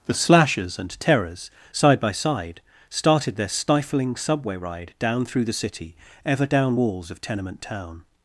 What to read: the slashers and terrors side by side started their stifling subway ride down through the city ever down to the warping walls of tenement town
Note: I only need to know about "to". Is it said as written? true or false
false